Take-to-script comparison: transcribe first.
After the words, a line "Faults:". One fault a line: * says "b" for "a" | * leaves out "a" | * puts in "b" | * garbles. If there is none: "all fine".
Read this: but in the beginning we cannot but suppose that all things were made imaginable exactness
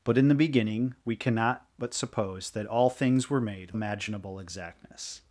but in the beginning we cannot but suppose that all things were made imaginable exactness
Faults:
all fine